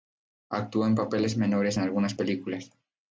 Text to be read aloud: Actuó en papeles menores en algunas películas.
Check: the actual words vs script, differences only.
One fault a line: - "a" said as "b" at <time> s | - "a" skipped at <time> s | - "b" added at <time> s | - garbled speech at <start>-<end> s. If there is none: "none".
none